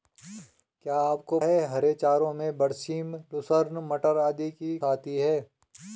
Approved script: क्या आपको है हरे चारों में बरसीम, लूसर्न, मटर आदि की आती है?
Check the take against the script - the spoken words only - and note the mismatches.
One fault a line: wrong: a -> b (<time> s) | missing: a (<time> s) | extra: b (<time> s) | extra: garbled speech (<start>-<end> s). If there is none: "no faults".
no faults